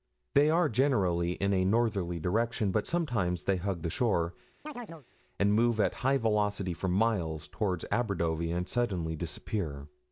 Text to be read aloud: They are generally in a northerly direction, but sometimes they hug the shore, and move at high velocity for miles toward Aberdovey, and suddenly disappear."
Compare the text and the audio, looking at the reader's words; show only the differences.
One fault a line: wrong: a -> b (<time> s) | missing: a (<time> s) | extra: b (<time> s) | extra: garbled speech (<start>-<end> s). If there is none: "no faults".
no faults